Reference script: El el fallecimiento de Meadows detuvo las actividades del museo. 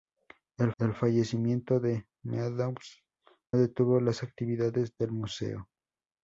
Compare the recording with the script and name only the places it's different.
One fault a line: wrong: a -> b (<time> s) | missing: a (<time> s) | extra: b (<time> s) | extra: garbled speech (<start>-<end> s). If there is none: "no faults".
no faults